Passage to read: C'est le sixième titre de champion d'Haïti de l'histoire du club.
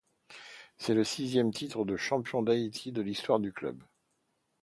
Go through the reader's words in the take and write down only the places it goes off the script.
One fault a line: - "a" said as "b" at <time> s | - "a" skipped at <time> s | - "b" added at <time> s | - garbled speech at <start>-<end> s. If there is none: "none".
none